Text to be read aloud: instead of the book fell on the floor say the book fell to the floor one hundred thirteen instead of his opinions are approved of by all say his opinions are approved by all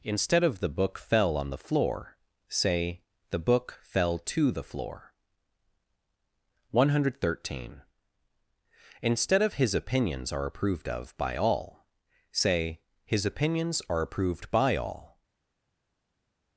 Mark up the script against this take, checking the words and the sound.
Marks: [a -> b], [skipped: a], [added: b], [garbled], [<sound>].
instead of the book fell on the floor say the book fell to the floor one hundred thirteen instead of his opinions are approved of by all say his opinions are approved by all